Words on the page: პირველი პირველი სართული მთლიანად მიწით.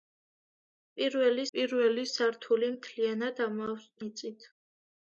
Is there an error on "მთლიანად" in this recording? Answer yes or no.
no